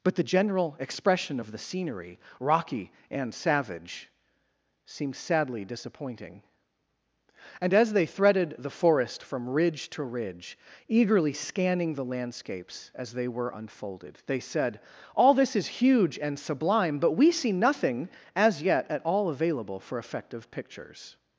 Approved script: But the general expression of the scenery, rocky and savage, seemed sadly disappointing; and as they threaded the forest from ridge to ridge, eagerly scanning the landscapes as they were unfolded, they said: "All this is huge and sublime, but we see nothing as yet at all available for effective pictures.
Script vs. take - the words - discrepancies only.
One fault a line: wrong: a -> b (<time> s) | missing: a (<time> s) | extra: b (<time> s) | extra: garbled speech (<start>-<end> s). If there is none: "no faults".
no faults